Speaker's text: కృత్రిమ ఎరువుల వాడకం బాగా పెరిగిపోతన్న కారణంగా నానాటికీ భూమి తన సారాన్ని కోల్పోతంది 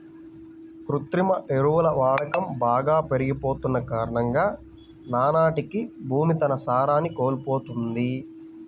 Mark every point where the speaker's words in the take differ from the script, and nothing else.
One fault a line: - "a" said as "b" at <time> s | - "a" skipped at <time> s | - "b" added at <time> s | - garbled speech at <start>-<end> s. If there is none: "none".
none